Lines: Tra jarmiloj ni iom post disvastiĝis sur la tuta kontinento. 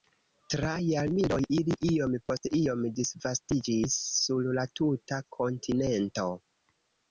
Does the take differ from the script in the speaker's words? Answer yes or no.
yes